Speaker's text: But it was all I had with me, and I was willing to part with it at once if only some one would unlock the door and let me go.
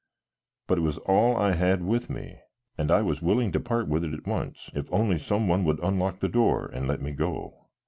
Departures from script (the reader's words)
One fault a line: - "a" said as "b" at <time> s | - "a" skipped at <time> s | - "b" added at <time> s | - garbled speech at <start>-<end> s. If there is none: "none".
none